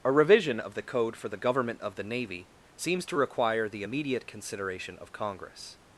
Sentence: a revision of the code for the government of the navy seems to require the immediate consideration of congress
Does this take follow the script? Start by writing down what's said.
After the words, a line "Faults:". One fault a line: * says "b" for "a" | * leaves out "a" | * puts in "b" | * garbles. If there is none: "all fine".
a revision of the code for the government of the navy seems to require the immediate consideration of congress
Faults:
all fine